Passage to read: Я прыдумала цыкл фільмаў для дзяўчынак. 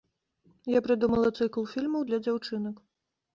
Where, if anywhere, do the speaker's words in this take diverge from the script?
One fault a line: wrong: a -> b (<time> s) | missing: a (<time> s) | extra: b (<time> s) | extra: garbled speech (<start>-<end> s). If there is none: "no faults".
no faults